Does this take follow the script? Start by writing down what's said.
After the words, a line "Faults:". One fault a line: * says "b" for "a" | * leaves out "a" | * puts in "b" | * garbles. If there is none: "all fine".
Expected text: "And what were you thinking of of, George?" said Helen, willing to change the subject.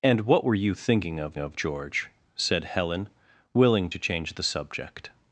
"And what were you thinking of of, George?" said Helen, willing to change the subject.
Faults:
all fine